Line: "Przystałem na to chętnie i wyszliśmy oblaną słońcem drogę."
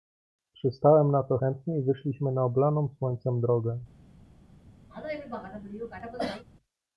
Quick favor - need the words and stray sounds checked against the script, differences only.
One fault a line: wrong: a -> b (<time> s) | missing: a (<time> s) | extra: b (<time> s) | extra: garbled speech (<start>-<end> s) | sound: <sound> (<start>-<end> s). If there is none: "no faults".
extra: na (2.3 s)
sound: cough (4.9-6.4 s)